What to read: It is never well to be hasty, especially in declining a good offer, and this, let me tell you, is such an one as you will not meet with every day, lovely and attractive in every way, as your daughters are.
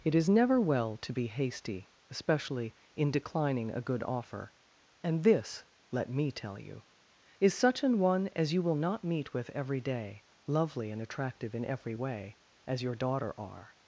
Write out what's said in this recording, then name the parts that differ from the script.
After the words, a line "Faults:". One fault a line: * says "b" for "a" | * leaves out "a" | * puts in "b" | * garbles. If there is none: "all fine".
It is never well to be hasty, especially in declining a good offer, and this, let me tell you, is such an one as you will not meet with every day, lovely and attractive in every way, as your daughter are.
Faults:
* says "daughter" for "daughters"